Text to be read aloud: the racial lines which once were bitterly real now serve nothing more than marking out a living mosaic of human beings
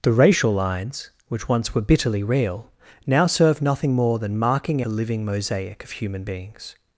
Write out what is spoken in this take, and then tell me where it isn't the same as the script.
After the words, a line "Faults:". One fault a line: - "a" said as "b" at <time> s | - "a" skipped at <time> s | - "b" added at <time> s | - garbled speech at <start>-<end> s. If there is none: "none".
the racial lines which once were bitterly real now serve nothing more than marking a living mosaic of human beings
Faults:
- "out" skipped at 4.8 s